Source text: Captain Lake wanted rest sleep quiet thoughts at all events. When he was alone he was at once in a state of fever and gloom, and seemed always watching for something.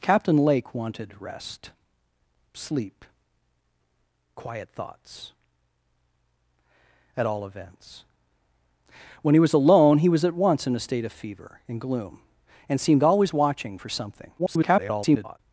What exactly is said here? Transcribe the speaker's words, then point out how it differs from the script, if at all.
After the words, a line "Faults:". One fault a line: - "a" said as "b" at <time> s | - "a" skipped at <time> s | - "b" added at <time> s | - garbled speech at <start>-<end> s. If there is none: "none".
Captain Lake wanted rest sleep quiet thoughts at all events. When he was alone he was at once in a state of fever and gloom, and seemed always watching for something. [garbled]
Faults:
- garbled speech at 14.4-15.4 s